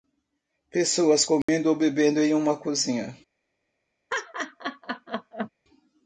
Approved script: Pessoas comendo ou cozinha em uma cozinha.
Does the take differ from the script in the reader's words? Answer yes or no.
yes